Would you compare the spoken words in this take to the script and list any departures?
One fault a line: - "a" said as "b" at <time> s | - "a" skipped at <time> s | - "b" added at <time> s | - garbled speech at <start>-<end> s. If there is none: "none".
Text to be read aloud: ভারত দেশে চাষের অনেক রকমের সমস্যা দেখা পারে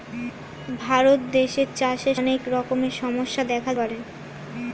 none